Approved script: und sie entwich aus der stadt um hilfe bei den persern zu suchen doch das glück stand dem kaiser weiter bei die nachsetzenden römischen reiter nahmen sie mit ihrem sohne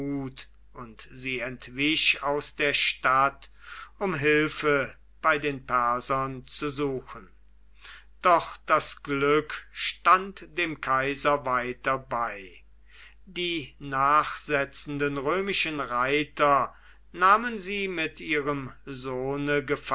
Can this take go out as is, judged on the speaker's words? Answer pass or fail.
pass